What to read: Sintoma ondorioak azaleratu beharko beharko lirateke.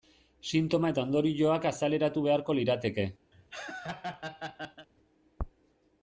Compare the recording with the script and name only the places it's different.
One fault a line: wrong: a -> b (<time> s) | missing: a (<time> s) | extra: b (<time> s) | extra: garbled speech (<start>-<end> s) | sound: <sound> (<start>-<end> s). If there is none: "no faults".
extra: eta (0.9 s)
missing: beharko (2.6 s)
sound: laugh (3.3-4.9 s)